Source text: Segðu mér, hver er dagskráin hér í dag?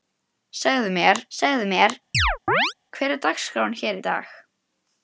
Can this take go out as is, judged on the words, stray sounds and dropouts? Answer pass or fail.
fail